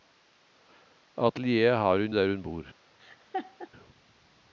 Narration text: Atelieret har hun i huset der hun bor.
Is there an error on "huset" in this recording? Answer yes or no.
yes